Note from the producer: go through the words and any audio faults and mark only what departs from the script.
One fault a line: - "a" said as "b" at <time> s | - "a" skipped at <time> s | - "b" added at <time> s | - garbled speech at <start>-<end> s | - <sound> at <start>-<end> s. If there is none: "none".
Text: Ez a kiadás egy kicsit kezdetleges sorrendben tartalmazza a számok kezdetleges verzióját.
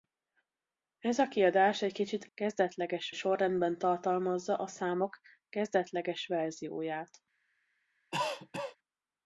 - cough at 8.1-8.8 s